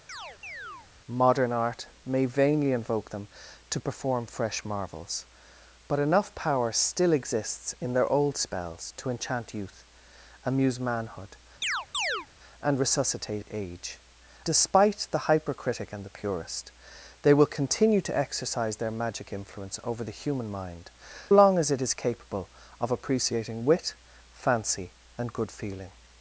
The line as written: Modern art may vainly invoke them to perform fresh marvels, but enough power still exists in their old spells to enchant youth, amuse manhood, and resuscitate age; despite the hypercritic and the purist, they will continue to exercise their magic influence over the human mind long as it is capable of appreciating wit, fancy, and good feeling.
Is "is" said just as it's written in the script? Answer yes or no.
yes